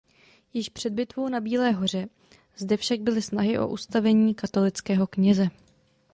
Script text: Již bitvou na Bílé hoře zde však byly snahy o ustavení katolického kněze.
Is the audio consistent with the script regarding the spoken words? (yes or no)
no